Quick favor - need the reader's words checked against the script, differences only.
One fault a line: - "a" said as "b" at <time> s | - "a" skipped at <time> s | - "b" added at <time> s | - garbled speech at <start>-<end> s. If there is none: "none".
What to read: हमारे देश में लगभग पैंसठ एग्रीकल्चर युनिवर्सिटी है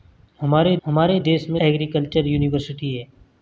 - "हमारे" added at 0.8 s
- "लगभग पैंसठ" skipped at 1.6 s